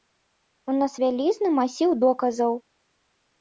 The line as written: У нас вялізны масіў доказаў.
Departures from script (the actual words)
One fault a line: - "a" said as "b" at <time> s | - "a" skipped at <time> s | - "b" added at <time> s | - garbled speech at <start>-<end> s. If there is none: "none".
none